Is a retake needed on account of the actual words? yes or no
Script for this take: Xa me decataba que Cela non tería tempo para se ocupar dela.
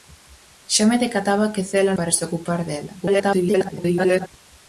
yes